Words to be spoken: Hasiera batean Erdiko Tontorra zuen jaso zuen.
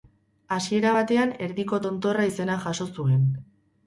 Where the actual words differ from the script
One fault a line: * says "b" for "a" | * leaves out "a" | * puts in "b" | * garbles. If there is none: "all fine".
* says "izena" for "zuen"